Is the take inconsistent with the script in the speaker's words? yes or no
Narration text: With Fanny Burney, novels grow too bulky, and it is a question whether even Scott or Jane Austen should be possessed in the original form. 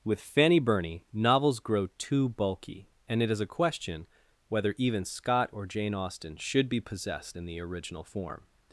no